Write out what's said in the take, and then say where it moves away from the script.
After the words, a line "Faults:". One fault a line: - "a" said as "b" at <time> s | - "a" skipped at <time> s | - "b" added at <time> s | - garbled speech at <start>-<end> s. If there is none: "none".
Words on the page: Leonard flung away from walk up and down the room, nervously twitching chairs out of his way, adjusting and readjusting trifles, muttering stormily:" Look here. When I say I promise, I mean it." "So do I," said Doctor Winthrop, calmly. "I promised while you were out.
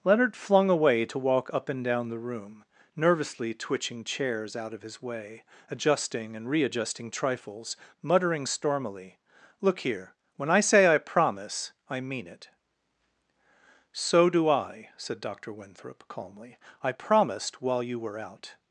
Leonard flung away to walk up and down the room, nervously twitching chairs out of his way, adjusting and readjusting trifles, muttering stormily:" Look here. When I say I promise, I mean it." "So do I," said Doctor Winthrop, calmly. "I promised while you were out.
Faults:
- "from" said as "to" at 1.1 s